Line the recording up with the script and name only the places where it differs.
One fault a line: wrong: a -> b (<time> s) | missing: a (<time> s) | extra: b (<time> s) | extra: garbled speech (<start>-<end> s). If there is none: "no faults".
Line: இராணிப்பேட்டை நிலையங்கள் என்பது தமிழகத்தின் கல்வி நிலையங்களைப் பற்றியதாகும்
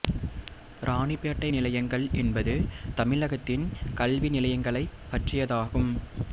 no faults